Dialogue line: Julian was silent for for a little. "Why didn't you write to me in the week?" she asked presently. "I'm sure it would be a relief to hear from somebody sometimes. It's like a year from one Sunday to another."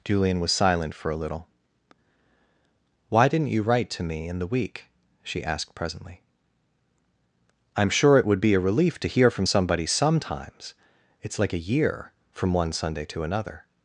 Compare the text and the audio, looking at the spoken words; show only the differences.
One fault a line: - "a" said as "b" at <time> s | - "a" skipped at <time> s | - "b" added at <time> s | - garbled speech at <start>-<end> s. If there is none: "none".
- "for" skipped at 1.1 s